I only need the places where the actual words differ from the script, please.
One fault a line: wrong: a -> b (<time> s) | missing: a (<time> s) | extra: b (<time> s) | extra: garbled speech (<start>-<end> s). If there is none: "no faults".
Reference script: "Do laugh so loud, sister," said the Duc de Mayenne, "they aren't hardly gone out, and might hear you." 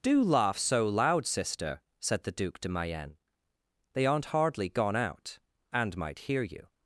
no faults